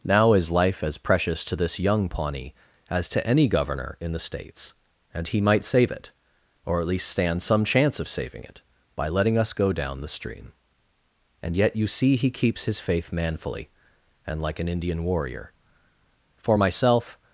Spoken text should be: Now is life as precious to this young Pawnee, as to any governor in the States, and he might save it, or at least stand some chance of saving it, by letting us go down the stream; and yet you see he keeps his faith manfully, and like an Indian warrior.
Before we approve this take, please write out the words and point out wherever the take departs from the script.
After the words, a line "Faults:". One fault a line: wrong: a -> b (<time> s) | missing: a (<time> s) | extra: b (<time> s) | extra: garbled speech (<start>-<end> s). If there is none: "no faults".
Now is life as precious to this young Pawnee, as to any governor in the States, and he might save it, or at least stand some chance of saving it, by letting us go down the stream; and yet you see he keeps his faith manfully, and like an Indian warrior. For myself
Faults:
extra: For myself (16.4 s)